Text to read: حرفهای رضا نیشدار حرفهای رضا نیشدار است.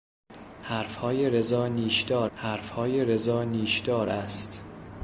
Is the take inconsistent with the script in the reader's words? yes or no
no